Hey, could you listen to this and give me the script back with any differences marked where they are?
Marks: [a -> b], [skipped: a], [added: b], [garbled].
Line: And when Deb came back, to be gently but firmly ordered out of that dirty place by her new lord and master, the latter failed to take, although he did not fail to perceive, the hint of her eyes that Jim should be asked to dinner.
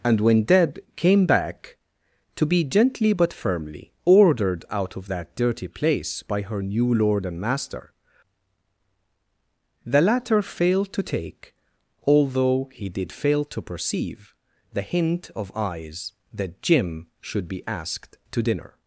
And when Deb came back, to be gently but firmly ordered out of that dirty place by her new lord and master, the latter failed to take, although he did [skipped: not] fail to perceive, the hint of [skipped: her] eyes that Jim should be asked to dinner.